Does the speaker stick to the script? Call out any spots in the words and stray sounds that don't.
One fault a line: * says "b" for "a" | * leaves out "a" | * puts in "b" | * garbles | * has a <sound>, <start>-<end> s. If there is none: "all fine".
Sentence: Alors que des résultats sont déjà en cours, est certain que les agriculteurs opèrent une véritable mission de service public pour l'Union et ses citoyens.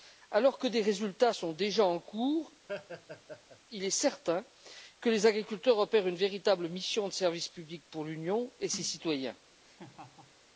* has a laugh, 2.7-3.6 s
* puts in "il"
* has a laugh, 9.6-10.4 s